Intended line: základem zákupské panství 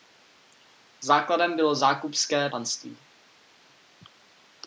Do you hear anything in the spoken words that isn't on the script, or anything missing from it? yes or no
yes